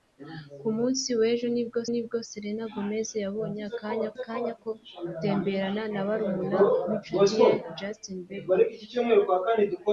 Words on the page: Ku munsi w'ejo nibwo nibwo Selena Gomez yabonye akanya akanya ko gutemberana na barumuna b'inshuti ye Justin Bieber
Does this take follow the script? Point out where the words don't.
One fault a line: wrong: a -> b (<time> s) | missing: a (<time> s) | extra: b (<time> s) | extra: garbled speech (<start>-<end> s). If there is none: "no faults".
no faults